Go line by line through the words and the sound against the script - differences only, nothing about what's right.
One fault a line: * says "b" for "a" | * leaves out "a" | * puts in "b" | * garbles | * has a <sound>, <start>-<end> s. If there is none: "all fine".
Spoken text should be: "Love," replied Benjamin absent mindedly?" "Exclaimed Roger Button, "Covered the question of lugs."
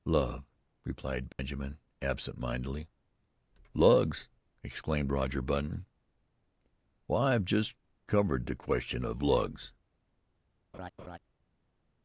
* has a dropout, 1.3-1.4 s
* puts in "Lugs"
* puts in "Why I've just"
* has a laugh, 10.7-11.2 s